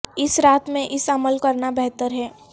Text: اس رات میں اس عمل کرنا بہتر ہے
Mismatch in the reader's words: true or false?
false